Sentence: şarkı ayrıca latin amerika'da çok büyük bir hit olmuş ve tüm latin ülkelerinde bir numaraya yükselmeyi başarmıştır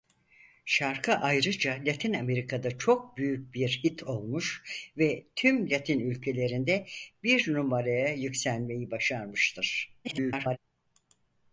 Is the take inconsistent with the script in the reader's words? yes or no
yes